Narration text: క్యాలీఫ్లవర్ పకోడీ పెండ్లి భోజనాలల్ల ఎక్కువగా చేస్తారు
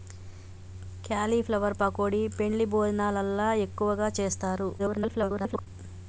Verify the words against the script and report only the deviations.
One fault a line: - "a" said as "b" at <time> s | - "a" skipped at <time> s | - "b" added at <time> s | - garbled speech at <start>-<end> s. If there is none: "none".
- garbled speech at 4.8-5.7 s